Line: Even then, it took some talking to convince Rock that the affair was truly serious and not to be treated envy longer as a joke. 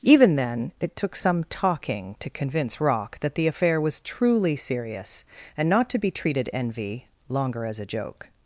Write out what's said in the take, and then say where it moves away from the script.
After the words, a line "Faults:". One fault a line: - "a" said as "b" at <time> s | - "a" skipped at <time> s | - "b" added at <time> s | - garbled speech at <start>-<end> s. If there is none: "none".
Even then, it took some talking to convince Rock that the affair was truly serious and not to be treated envy longer as a joke.
Faults:
none